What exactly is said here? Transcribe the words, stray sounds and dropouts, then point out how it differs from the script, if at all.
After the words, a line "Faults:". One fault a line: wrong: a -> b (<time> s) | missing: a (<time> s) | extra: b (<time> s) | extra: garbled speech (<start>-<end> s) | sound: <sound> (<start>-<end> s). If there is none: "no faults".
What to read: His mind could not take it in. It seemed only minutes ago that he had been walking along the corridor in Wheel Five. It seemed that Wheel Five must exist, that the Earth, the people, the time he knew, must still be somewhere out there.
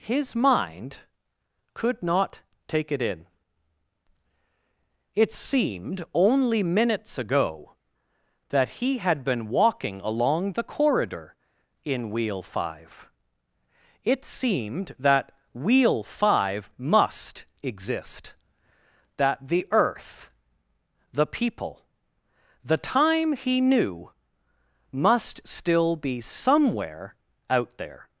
His mind could not take it in. It seemed only minutes ago that he had been walking along the corridor in Wheel Five. It seemed that Wheel Five must exist, that the Earth, the people, the time he knew, must still be somewhere out there.
Faults:
no faults